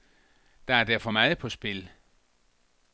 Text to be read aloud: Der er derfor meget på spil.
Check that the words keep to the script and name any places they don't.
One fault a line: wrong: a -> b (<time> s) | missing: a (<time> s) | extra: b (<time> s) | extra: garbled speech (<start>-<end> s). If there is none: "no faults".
no faults